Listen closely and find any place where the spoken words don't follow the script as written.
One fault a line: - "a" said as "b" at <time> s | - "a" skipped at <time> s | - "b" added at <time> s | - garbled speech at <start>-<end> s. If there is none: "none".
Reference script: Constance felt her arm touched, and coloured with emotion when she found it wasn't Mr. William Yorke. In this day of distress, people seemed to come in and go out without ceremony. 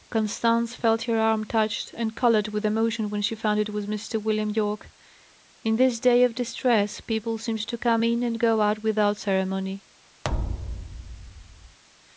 - "wasn't" said as "was" at 3.7 s